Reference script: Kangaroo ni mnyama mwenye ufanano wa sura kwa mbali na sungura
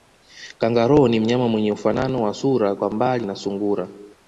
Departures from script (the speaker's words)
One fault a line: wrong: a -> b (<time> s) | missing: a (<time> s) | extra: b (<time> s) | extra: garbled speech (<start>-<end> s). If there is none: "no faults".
no faults